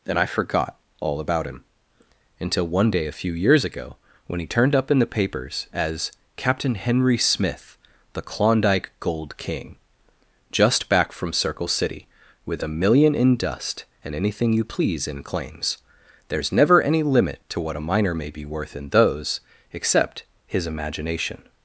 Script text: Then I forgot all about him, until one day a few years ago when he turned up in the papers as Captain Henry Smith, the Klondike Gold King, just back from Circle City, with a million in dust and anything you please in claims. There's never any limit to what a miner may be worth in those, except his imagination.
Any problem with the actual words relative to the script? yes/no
yes